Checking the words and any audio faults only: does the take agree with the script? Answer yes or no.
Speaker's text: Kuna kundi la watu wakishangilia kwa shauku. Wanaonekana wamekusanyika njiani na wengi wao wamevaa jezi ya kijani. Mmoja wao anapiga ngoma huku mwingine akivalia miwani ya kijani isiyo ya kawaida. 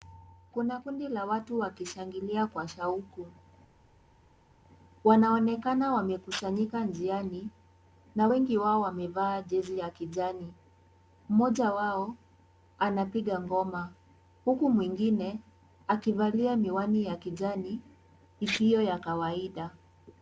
yes